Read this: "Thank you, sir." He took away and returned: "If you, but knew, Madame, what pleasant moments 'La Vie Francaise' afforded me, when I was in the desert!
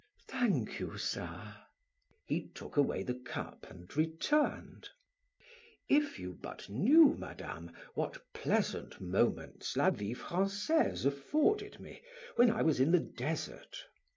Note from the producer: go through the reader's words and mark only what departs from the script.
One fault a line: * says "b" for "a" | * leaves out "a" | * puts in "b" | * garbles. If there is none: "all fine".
* puts in "the cup"